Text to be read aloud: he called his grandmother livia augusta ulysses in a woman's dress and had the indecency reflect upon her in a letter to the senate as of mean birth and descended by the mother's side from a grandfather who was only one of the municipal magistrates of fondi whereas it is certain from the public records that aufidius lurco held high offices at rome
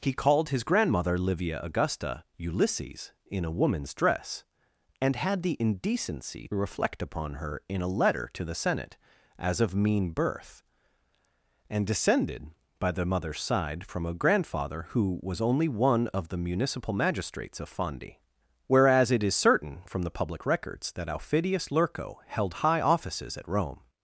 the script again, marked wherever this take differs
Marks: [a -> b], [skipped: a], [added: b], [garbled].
he called his grandmother livia augusta ulysses in a woman's dress and had the indecency reflect upon her in a letter to the senate as of mean birth and descended by the mother's side from a grandfather who was only one of the municipal magistrates of fondi whereas it is certain from the public records that aufidius lurco held high offices at rome